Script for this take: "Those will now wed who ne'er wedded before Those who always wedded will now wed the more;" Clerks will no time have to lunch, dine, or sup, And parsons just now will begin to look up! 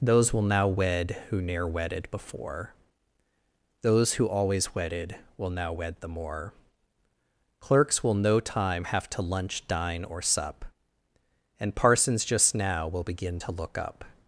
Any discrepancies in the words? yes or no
no